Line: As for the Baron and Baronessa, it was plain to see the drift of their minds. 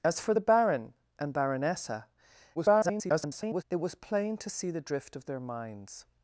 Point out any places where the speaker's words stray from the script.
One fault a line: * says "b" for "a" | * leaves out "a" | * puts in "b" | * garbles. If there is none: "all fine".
* garbles